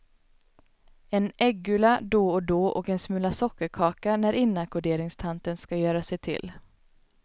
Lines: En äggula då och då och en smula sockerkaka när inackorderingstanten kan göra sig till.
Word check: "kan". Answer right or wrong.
wrong